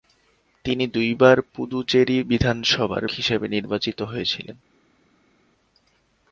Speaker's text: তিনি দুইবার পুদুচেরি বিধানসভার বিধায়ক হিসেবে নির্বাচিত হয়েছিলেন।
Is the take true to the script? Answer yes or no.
no